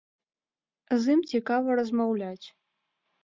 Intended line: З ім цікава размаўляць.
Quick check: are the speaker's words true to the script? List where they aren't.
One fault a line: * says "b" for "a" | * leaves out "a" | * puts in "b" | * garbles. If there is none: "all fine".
all fine